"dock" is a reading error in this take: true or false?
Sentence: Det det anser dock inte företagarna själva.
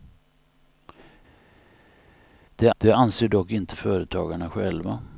false